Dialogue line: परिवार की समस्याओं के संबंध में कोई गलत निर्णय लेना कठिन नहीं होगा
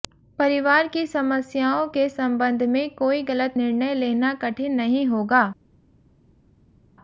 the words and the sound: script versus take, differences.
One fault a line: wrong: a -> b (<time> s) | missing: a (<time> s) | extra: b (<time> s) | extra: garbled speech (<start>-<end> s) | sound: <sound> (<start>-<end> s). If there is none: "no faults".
no faults